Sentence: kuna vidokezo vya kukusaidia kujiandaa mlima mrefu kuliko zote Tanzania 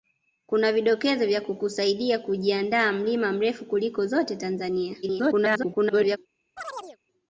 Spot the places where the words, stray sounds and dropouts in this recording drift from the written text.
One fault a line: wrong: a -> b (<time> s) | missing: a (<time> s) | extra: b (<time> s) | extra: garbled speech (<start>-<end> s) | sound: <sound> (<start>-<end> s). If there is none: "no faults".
extra: garbled speech (5.0-6.2 s)
sound: chirp (6.6-7.0 s)